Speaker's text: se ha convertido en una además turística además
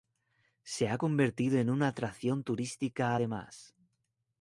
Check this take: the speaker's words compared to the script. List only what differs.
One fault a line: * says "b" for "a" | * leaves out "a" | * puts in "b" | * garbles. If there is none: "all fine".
* says "atracción" for "además"